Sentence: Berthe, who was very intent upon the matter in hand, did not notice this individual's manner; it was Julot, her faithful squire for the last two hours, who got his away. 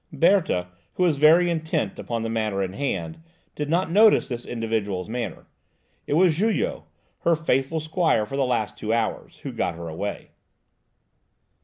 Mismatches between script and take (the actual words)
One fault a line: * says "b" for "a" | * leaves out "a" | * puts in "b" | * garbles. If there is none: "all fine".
* says "her" for "his"